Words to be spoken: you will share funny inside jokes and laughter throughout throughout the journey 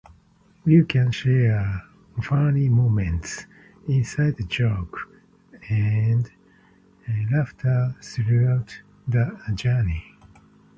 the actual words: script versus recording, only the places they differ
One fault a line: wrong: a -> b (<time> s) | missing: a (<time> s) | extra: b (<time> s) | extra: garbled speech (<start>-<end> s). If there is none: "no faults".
wrong: will -> can (0.8 s)
extra: moments (2.7 s)
missing: throughout (8.8 s)